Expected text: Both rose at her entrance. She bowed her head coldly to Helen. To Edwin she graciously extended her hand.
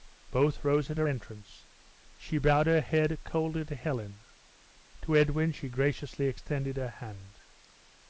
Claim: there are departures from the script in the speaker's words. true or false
false